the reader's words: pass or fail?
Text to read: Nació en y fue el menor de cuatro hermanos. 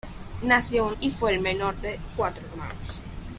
pass